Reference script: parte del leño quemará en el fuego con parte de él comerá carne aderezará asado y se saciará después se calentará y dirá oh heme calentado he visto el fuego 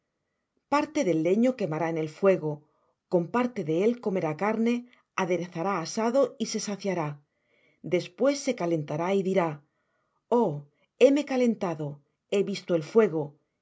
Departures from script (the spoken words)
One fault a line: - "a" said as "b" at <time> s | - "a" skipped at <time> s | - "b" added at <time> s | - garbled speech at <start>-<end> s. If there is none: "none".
none